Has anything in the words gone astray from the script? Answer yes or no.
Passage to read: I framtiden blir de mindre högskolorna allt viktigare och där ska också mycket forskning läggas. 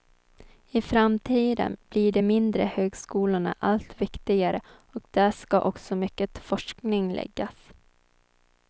no